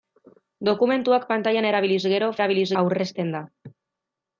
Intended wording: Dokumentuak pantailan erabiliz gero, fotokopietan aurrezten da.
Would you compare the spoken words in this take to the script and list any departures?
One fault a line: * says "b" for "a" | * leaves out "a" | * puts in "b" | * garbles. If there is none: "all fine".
* says "erabiliz" for "fotokopietan"